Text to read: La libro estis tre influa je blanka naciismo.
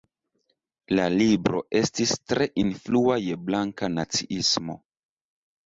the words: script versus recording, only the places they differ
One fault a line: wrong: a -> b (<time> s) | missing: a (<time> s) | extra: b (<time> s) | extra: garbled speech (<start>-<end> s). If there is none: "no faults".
no faults